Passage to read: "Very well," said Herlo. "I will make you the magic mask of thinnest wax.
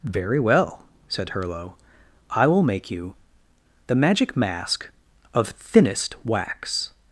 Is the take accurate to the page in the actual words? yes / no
yes